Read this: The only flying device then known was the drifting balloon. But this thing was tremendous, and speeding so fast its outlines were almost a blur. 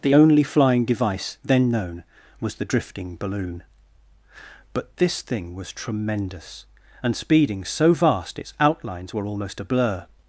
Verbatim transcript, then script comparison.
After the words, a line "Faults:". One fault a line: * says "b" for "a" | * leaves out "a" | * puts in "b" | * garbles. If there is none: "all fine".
The only flying device then known was the drifting balloon. But this thing was tremendous, and speeding so vast its outlines were almost a blur.
Faults:
* says "vast" for "fast"